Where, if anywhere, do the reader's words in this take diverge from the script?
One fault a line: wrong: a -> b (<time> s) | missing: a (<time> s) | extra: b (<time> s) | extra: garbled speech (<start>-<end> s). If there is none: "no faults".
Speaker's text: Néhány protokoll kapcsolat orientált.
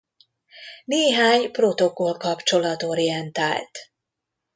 no faults